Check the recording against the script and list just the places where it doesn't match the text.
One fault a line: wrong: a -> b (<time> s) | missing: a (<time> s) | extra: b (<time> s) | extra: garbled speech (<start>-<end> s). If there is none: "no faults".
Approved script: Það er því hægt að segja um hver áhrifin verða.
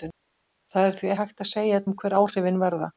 no faults